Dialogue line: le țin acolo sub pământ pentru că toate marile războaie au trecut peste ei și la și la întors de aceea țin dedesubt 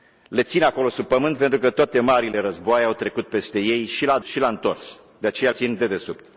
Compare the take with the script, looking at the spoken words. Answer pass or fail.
pass